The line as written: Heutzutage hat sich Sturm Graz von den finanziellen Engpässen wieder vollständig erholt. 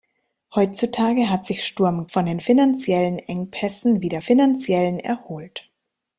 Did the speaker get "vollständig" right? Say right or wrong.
wrong